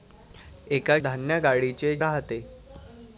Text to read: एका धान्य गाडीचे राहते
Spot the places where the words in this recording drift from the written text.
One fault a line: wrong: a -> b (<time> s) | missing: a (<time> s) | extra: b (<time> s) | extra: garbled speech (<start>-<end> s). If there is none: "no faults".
no faults